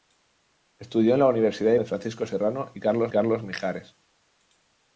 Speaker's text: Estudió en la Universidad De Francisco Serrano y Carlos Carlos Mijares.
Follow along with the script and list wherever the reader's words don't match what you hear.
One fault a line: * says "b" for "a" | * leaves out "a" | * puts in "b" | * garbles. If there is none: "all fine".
all fine